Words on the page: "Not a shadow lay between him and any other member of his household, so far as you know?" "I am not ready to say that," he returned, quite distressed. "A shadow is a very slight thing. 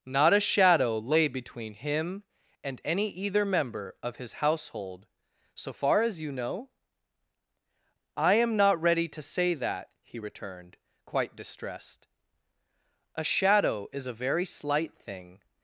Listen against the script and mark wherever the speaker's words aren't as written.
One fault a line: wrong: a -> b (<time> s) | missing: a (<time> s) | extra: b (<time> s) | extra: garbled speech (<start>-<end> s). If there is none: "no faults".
wrong: other -> either (3.1 s)